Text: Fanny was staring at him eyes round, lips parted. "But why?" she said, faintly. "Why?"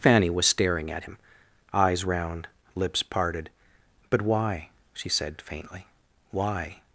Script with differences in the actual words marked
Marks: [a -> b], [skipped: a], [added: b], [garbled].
Fanny was staring at him eyes round, lips parted. "But why?" she said, faintly. "Why?"